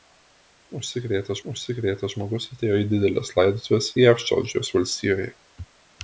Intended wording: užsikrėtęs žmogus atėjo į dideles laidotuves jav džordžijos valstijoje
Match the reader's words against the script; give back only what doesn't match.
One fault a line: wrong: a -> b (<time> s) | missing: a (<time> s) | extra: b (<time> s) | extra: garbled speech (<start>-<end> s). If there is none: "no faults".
extra: užsikrėtęs (1.5 s)